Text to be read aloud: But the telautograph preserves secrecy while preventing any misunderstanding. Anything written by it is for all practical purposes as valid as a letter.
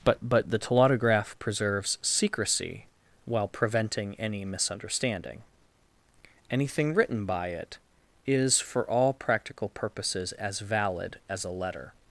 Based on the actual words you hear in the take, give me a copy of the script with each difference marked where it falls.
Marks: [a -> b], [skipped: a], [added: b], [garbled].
But [added: but] the telautograph preserves secrecy while preventing any misunderstanding. Anything written by it is for all practical purposes as valid as a letter.